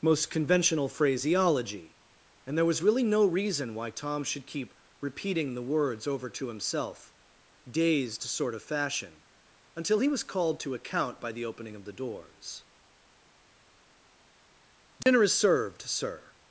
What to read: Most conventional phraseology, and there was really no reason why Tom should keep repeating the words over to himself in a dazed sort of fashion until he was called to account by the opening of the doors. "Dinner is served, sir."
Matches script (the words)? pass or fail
fail